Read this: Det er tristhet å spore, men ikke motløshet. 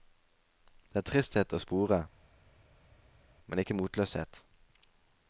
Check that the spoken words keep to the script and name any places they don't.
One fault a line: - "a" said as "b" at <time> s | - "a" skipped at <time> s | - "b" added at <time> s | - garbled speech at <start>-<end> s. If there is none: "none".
none